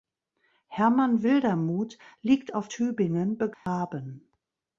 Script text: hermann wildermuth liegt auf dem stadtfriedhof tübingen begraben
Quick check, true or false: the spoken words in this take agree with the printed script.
false